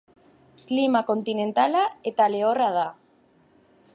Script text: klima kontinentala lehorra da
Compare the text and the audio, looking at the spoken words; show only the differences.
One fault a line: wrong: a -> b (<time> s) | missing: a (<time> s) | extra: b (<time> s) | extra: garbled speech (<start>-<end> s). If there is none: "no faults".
extra: eta (2.1 s)